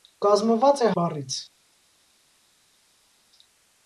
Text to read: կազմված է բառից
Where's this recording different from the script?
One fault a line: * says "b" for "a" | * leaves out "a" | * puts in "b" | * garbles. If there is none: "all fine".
all fine